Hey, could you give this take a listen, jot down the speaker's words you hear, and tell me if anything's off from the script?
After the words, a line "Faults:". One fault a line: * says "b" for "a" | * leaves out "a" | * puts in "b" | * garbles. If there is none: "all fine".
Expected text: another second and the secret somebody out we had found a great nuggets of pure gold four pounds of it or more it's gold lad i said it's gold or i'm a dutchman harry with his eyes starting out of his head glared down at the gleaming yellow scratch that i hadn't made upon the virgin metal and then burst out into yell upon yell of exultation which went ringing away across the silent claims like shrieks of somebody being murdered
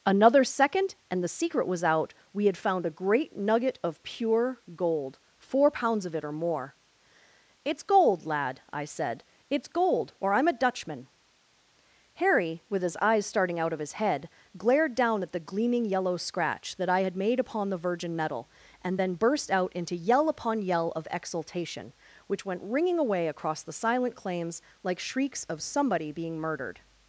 another second and the secret was out we had found a great nugget of pure gold four pounds of it or more it's gold lad i said it's gold or i'm a dutchman harry with his eyes starting out of his head glared down at the gleaming yellow scratch that i had made upon the virgin metal and then burst out into yell upon yell of exultation which went ringing away across the silent claims like shrieks of somebody being murdered
Faults:
* says "was" for "somebody"
* says "nugget" for "nuggets"
* says "had" for "hadn't"